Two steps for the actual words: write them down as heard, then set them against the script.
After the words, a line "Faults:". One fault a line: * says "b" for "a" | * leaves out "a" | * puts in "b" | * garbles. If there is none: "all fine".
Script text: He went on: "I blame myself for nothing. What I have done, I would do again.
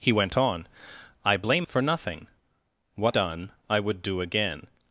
He went on: "I blame for nothing. What done, I would do again.
Faults:
* leaves out "myself"
* leaves out "I have"